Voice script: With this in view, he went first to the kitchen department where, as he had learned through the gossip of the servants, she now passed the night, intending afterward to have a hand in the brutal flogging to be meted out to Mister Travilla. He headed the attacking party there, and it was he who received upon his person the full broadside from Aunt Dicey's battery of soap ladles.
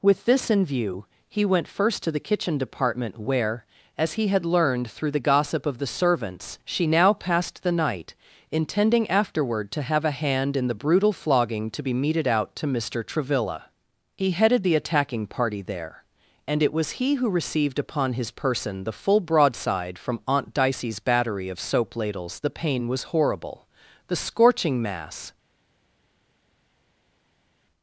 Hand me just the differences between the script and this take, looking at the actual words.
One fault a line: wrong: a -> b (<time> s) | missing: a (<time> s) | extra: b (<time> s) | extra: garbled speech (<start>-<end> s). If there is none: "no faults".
extra: The pain was horrible the scorching mass (22.4 s)